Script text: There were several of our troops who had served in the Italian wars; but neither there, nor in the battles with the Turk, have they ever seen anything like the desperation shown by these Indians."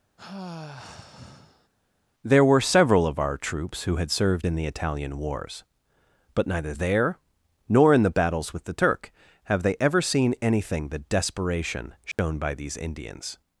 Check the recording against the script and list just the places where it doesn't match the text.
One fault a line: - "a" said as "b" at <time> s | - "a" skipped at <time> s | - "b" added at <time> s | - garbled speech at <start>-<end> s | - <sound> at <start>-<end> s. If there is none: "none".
- sigh at 0.2-1.7 s
- "like" skipped at 10.9 s
- dropout at 12.1-12.2 s